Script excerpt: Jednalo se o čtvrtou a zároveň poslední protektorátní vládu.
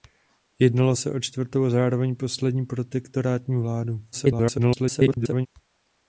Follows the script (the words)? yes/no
no